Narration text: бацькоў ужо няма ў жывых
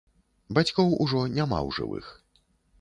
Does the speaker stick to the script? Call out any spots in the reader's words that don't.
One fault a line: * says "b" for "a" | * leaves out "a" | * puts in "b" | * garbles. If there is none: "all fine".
all fine